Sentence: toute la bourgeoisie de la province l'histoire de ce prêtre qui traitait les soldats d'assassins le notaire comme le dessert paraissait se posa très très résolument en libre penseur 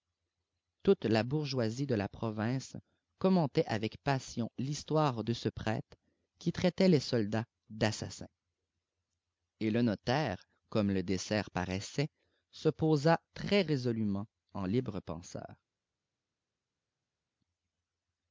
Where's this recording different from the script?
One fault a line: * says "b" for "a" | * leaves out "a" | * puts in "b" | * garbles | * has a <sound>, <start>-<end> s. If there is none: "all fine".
* puts in "commentait avec passion"
* puts in "et"
* leaves out "très"